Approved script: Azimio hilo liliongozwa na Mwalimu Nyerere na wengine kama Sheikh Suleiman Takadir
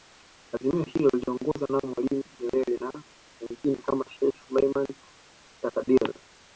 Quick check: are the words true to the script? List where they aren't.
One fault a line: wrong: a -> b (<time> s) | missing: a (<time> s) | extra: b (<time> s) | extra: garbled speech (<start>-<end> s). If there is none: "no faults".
no faults